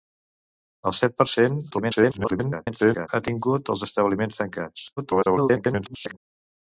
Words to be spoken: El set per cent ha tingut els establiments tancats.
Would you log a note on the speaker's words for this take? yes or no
yes